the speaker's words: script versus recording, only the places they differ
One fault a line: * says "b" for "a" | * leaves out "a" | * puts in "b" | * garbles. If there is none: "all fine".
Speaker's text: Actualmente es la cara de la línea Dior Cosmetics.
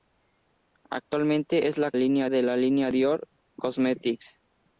* says "línea" for "cara"